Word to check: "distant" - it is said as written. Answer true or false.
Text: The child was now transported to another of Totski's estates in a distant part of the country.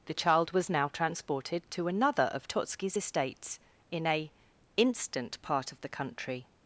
false